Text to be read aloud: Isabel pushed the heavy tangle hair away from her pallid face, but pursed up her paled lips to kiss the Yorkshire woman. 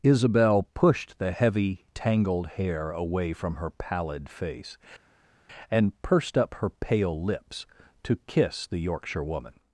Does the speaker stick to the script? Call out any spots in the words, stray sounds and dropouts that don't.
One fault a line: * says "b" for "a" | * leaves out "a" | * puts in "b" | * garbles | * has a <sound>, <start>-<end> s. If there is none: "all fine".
* says "tangled" for "tangle"
* says "and" for "but"
* says "pale" for "paled"